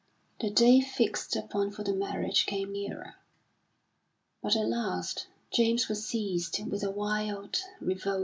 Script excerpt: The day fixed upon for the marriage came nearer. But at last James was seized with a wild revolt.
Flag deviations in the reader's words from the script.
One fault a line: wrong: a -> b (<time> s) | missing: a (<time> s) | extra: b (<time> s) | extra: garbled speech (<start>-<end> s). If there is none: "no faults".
no faults